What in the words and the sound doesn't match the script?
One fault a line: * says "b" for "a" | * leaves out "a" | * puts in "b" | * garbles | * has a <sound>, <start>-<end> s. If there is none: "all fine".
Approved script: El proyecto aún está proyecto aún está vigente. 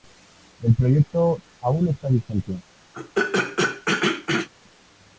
* leaves out "proyecto aún está"
* has a throat clearing, 2.9-4.5 s